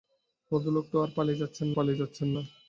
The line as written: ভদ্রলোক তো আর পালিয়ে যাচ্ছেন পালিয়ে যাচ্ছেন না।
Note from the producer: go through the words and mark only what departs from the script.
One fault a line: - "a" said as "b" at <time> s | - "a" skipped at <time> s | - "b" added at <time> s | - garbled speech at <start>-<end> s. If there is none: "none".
none